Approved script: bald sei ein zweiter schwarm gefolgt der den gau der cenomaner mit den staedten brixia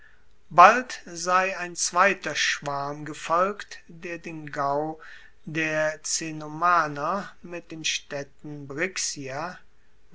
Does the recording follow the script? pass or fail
pass